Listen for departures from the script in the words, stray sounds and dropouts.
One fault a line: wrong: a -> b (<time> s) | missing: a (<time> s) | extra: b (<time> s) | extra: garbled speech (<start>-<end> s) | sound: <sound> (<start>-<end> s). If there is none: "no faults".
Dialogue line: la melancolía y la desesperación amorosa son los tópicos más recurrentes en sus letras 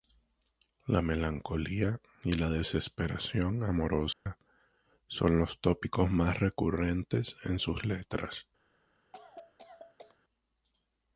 sound: dropout (4.1-4.3 s)
sound: cough (9.1-10.2 s)